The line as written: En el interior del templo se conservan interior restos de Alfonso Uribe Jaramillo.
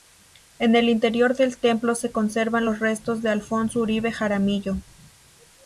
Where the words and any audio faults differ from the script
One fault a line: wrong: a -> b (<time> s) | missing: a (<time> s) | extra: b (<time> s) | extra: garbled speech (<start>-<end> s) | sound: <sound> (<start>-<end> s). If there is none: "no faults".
wrong: interior -> los (2.6 s)